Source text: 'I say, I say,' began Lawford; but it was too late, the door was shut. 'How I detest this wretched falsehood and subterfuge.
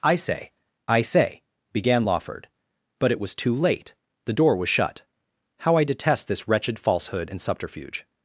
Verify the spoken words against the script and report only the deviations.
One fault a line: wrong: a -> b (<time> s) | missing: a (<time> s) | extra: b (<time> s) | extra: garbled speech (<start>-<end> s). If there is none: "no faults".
no faults